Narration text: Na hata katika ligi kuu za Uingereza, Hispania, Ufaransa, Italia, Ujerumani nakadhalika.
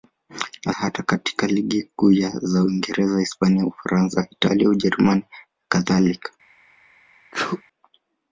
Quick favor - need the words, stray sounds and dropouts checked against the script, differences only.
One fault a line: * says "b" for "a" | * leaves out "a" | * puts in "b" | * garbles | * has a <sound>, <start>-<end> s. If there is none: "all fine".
* has a sneeze, 7.3-7.6 s